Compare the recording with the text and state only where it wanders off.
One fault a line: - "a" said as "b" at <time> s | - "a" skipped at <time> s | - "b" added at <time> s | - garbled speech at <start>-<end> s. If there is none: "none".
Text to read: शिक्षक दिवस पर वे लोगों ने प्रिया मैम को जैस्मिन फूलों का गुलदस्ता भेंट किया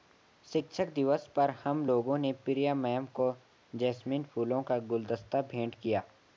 - "वे" said as "हम" at 1.6 s